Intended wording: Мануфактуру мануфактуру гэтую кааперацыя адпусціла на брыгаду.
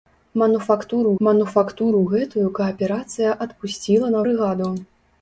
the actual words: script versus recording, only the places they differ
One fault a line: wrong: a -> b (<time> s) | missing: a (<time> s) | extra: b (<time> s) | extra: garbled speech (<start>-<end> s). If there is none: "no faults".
no faults